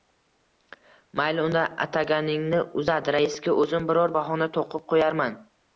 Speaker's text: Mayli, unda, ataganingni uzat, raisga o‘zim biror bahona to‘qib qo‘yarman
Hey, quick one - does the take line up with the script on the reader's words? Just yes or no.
yes